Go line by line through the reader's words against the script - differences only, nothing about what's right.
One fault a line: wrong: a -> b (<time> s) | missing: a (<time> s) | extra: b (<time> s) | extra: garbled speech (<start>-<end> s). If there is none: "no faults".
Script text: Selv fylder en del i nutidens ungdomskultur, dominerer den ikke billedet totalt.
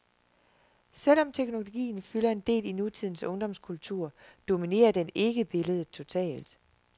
extra: om teknologien (1.2 s)